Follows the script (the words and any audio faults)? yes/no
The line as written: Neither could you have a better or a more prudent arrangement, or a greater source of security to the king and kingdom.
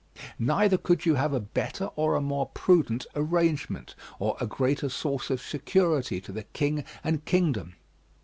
yes